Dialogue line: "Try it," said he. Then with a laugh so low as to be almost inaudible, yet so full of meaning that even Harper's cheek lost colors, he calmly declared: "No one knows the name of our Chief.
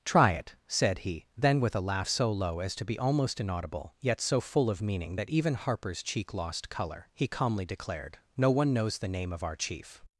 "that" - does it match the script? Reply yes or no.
yes